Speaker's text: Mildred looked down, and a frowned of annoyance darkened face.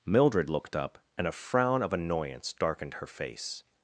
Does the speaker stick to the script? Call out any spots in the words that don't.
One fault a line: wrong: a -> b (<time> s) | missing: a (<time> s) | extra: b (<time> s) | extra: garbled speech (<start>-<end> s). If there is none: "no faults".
wrong: down -> up (0.7 s)
wrong: frowned -> frown (1.3 s)
extra: her (2.9 s)